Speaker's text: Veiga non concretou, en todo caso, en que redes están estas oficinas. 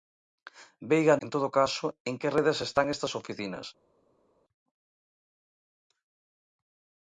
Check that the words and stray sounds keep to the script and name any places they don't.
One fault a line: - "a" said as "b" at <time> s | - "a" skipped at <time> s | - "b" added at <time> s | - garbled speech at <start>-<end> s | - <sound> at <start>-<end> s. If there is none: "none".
- "non concretou" skipped at 1.1 s